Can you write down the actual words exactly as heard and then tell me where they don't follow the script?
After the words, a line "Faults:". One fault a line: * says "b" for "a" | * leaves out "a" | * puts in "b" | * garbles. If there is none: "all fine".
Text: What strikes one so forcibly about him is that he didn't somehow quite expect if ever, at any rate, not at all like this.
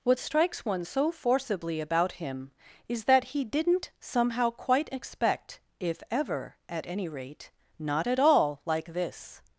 What strikes one so forcibly about him is that he didn't somehow quite expect if ever, at any rate, not at all like this.
Faults:
all fine